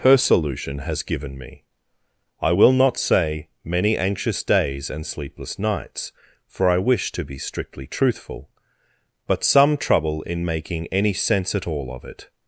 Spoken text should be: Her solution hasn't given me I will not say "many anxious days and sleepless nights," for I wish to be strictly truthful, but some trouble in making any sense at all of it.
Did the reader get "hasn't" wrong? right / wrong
wrong